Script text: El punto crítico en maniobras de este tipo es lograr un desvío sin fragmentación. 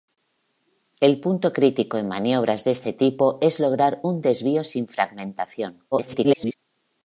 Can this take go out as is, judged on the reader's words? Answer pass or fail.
fail